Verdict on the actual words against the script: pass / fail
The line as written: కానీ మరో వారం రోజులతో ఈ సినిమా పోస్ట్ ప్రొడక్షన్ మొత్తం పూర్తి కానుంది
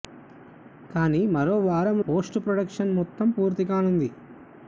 fail